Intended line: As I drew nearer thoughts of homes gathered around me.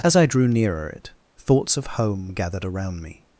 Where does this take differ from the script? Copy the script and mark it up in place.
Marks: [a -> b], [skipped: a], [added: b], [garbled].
As I drew nearer [added: it] thoughts of [homes -> home] gathered around me.